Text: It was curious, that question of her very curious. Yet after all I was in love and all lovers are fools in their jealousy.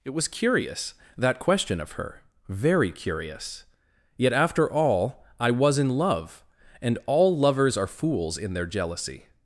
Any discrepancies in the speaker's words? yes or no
no